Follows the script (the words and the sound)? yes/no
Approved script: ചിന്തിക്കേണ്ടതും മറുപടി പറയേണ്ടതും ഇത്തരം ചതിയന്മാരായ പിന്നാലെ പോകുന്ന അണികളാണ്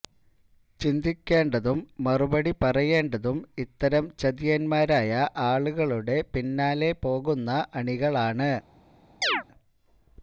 no